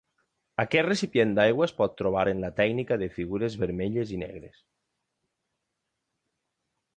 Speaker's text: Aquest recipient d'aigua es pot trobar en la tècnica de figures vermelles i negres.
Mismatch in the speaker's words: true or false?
false